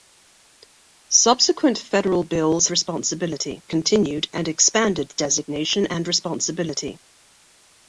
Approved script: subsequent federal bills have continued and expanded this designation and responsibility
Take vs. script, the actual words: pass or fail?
fail